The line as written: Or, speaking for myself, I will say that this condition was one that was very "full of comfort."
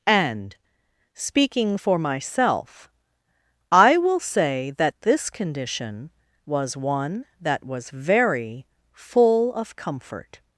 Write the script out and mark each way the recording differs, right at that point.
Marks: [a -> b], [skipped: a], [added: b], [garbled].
[Or, -> And] speaking for myself, I will say that this condition was one that was very "full of comfort."